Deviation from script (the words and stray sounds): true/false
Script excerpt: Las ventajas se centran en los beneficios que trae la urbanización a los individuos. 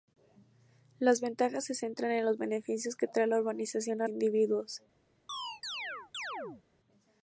true